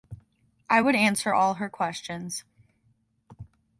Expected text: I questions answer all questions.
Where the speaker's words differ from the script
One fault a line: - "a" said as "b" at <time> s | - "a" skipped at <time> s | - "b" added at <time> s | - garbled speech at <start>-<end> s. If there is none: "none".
- "questions" said as "would" at 0.8 s
- "her" added at 1.5 s